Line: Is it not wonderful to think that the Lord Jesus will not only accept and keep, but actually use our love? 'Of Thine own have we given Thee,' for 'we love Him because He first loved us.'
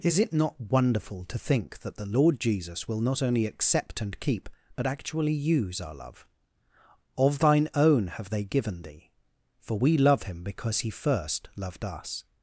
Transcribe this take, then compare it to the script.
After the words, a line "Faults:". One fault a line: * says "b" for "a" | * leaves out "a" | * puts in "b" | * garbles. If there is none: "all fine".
Is it not wonderful to think that the Lord Jesus will not only accept and keep, but actually use our love? 'Of Thine own have they given Thee,' for 'we love Him because He first loved us.'
Faults:
* says "they" for "we"